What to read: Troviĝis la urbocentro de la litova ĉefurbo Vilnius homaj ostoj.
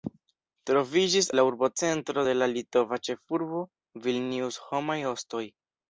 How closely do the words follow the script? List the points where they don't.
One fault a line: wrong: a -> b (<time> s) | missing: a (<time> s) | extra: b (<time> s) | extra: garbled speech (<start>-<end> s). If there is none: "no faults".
no faults